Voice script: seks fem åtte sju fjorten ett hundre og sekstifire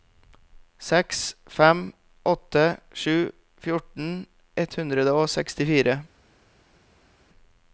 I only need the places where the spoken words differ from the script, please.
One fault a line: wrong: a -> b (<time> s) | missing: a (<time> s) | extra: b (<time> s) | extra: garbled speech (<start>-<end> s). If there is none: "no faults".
no faults